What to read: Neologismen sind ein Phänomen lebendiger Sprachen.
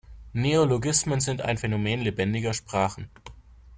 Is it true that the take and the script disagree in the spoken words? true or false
false